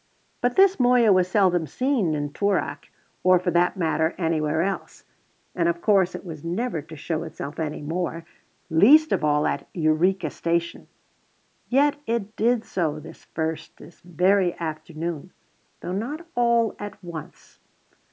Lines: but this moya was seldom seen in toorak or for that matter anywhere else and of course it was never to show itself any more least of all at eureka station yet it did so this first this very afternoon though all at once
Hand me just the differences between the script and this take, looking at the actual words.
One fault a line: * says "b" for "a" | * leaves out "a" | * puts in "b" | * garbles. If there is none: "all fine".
* puts in "not"